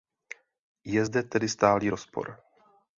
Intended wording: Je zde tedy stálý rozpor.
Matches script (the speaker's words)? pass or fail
pass